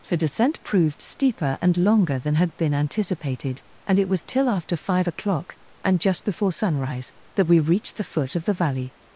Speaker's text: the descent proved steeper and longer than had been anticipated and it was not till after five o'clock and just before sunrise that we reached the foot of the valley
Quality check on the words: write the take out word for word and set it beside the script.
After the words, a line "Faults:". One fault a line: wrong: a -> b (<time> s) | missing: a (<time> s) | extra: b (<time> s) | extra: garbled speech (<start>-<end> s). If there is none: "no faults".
the descent proved steeper and longer than had been anticipated and it was till after five o'clock and just before sunrise that we reached the foot of the valley
Faults:
missing: not (4.2 s)